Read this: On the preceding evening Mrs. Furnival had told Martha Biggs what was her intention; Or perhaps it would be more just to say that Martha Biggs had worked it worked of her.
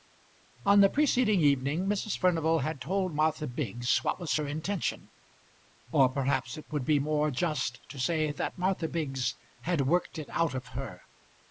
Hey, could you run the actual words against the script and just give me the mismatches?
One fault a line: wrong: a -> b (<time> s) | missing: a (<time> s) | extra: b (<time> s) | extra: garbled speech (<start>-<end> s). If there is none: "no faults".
wrong: worked -> out (10.3 s)